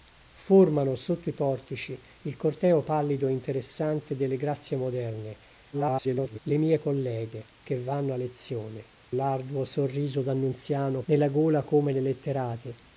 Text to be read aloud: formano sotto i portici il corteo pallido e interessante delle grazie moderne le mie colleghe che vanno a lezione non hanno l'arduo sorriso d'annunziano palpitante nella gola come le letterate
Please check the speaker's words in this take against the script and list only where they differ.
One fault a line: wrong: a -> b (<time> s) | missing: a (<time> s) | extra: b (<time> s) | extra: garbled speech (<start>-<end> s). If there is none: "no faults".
extra: garbled speech (5.7-6.4 s)
missing: non hanno (8.8 s)
missing: palpitante (11.0 s)